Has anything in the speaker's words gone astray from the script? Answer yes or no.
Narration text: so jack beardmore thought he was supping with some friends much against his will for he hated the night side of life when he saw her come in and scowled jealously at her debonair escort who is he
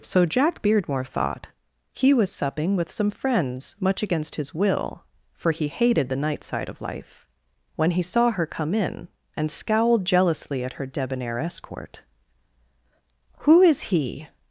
no